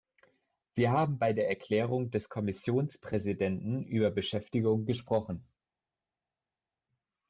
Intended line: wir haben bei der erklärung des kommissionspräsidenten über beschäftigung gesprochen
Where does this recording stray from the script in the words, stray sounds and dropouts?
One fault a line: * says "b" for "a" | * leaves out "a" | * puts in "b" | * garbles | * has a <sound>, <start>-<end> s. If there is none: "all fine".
all fine